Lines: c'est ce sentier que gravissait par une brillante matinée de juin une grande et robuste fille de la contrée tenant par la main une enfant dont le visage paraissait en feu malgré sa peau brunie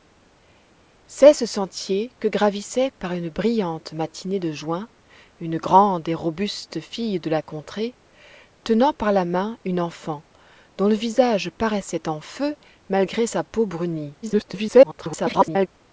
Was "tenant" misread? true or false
false